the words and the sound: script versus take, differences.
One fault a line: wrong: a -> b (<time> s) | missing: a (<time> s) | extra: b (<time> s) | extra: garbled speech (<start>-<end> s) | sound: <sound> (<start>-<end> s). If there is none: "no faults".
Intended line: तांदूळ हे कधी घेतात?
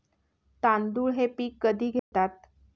extra: पीक (1.4 s)
sound: dropout (2.0-2.1 s)